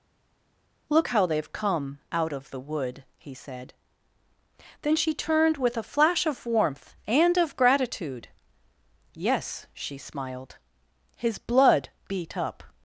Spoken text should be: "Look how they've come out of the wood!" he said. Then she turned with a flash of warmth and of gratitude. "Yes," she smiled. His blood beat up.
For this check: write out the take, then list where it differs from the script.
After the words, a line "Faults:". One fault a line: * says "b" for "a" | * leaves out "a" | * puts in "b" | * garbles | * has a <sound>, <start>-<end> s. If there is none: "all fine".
"Look how they've come out of the wood!" he said. Then she turned with a flash of warmth and of gratitude. "Yes," she smiled. His blood beat up.
Faults:
all fine